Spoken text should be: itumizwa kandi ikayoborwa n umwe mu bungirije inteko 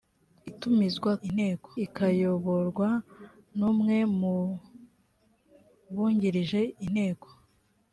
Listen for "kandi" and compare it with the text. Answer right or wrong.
wrong